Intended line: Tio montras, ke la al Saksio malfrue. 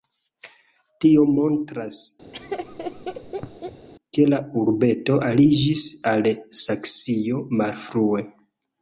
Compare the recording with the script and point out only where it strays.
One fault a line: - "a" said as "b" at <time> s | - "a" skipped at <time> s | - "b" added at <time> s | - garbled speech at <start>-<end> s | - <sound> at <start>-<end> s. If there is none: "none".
- laugh at 2.3-3.9 s
- "urbeto aliĝis" added at 4.6 s